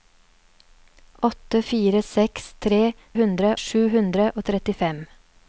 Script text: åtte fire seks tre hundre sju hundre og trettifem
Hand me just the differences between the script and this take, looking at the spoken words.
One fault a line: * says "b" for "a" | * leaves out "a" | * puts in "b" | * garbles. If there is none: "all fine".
all fine